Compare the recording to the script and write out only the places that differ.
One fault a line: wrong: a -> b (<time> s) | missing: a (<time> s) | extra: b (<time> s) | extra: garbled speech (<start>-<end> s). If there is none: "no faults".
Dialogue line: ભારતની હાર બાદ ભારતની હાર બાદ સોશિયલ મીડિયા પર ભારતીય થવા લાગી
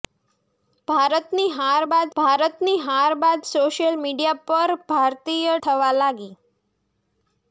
no faults